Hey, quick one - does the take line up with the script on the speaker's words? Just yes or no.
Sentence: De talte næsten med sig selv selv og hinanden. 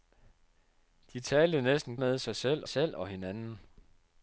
yes